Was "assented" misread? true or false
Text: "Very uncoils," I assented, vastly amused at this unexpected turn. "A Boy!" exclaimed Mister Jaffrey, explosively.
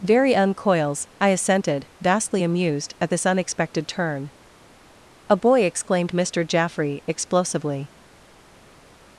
false